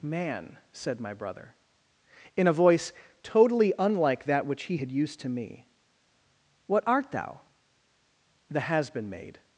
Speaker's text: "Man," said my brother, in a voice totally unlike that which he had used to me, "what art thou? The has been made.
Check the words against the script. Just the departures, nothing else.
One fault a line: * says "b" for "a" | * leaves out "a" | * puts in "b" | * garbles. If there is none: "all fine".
all fine